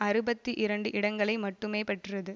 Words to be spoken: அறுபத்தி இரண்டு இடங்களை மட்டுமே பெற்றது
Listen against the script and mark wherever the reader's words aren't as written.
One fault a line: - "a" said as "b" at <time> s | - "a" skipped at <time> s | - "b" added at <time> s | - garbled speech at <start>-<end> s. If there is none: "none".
none